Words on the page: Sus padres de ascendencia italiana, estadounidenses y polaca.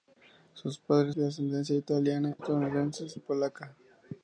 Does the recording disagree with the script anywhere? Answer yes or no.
no